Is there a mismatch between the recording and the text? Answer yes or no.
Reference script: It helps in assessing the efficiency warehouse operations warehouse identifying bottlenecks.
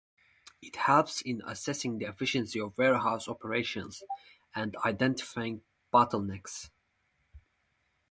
yes